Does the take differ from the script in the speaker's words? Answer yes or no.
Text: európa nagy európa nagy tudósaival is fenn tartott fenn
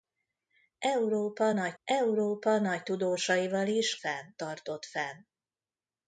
no